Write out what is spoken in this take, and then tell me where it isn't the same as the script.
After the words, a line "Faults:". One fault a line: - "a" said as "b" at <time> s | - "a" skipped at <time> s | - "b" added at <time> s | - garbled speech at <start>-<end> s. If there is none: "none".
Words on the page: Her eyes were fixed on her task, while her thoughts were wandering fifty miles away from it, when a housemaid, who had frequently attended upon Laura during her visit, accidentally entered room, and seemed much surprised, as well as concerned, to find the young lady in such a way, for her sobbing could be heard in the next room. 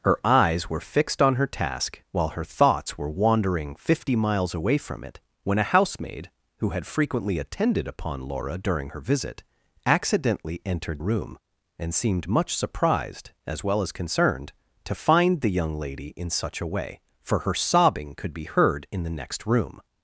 Her eyes were fixed on her task, while her thoughts were wandering fifty miles away from it, when a housemaid, who had frequently attended upon Laura during her visit, accidentally entered room, and seemed much surprised, as well as concerned, to find the young lady in such a way, for her sobbing could be heard in the next room.
Faults:
none